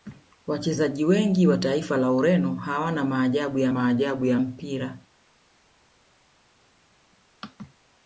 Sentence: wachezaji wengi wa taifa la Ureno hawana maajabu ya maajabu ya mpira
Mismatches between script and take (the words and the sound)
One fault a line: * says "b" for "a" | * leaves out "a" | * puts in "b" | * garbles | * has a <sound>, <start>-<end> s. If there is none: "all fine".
all fine